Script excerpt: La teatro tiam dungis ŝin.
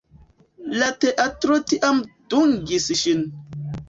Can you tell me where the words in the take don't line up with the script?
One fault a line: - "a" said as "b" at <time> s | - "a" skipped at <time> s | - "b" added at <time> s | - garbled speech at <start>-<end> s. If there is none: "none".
none